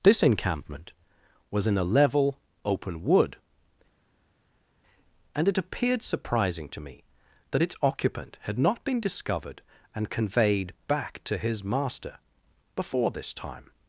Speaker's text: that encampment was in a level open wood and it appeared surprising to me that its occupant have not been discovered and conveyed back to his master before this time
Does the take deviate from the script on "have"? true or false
true